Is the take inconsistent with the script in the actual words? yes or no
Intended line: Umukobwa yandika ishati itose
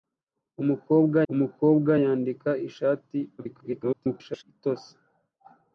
yes